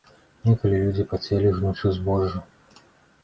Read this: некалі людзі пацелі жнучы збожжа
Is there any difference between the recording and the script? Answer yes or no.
no